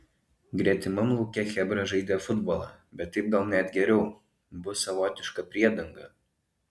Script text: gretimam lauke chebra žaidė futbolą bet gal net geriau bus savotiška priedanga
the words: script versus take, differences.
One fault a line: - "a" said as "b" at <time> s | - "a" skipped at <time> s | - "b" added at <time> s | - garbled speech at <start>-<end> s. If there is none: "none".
- "taip" added at 3.2 s